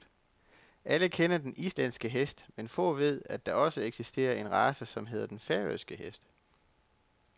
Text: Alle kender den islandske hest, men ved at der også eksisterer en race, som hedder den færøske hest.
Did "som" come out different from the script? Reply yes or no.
no